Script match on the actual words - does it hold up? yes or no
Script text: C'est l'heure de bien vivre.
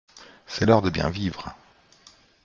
yes